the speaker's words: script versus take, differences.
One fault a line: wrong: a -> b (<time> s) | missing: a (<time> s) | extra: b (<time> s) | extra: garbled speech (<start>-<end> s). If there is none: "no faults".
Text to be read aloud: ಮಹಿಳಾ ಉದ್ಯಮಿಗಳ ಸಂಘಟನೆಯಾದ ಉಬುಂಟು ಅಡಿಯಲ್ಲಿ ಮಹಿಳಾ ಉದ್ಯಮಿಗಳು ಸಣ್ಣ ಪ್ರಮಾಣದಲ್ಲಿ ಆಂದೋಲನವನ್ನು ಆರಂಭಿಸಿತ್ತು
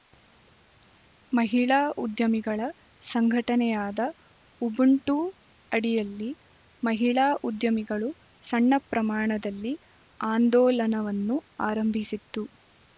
no faults